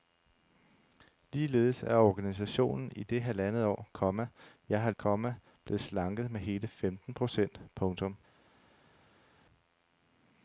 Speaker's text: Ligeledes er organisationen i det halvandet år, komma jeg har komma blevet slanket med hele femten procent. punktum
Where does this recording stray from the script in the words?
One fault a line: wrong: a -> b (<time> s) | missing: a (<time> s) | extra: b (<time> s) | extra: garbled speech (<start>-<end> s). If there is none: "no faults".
no faults